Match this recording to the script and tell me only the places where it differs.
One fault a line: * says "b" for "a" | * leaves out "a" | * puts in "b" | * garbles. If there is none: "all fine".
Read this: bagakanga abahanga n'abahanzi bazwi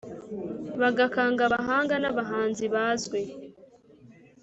all fine